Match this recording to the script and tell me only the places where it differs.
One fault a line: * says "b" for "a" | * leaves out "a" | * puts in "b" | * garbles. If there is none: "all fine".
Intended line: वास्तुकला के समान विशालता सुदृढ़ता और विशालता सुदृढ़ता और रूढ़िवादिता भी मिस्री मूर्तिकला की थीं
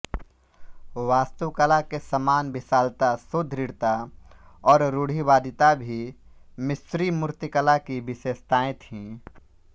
* leaves out "विशालता सुदृढ़ता और"
* puts in "विशेषताएँ"